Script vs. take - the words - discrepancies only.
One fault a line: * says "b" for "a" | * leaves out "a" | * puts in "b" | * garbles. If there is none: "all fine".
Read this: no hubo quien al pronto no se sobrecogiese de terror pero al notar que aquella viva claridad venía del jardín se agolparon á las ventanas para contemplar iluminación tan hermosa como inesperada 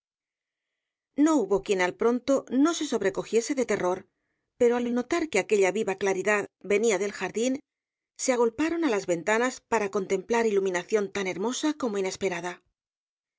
* puts in "al"